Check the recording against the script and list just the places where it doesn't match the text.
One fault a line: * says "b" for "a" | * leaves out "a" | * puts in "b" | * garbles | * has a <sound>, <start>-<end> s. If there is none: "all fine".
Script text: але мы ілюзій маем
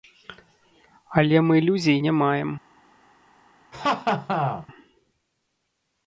* puts in "не"
* has a laugh, 3.7-4.7 s